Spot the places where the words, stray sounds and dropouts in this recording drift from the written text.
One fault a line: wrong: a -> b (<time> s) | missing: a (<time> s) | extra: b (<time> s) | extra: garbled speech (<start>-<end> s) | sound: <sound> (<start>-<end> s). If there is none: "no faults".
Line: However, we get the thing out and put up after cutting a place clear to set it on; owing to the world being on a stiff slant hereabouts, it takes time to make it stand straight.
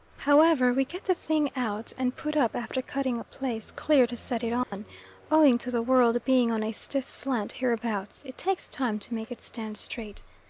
sound: dropout (4.6-4.7 s)